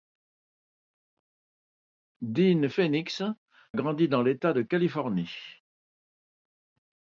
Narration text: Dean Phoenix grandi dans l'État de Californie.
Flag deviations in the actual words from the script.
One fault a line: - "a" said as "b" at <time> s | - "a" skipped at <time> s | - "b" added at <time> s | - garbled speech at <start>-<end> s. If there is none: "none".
none